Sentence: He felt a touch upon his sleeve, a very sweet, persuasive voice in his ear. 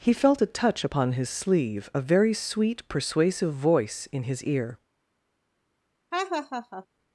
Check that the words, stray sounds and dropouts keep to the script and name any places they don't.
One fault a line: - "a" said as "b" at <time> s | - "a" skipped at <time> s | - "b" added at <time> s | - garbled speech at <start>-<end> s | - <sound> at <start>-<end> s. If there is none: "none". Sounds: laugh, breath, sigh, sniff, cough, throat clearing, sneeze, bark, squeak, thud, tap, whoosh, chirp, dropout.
- laugh at 6.1-6.9 s